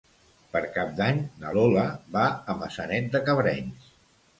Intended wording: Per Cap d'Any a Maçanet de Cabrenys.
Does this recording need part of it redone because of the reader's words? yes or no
yes